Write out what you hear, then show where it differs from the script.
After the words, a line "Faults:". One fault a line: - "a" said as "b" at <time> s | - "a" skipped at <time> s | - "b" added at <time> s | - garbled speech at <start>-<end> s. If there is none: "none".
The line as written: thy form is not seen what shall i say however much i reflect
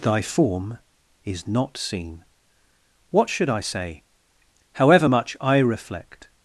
thy form is not seen what should i say however much i reflect
Faults:
- "shall" said as "should" at 3.3 s